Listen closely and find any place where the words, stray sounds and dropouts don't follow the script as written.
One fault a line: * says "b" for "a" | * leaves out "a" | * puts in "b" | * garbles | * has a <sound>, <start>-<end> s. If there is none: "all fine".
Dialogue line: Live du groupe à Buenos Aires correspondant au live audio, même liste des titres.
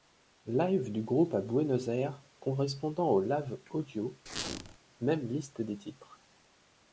* has a squeak, 4.3-4.8 s